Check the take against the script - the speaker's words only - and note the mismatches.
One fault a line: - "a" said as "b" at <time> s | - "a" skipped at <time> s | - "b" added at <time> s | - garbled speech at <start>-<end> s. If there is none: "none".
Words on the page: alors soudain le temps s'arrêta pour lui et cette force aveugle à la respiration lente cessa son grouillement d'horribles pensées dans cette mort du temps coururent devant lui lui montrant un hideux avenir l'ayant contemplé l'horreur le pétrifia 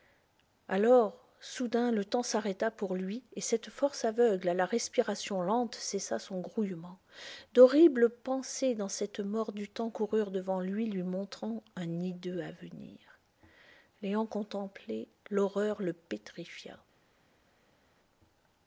none